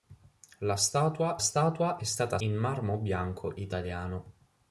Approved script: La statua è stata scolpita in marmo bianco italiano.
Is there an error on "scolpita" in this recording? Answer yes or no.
yes